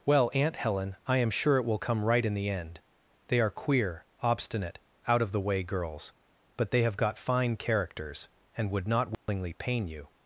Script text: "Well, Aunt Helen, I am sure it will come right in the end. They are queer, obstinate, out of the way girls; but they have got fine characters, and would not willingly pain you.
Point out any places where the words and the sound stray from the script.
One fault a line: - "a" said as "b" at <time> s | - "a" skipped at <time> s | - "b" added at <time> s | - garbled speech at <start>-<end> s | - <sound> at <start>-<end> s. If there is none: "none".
- dropout at 9.1-9.3 s